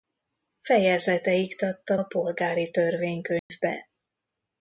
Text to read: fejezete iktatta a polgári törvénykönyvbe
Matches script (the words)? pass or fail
pass